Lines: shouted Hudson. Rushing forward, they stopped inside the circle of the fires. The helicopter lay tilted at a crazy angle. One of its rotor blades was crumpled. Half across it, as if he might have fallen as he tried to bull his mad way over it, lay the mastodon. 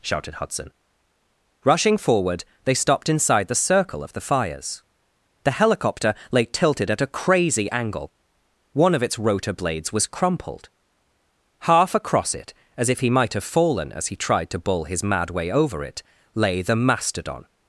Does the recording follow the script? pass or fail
pass